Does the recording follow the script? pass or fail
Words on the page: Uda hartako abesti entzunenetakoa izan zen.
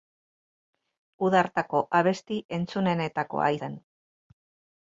fail